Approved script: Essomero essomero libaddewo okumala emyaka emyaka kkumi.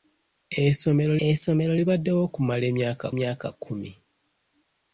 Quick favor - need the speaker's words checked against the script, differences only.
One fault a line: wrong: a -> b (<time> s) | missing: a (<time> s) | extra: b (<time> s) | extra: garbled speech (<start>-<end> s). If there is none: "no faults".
no faults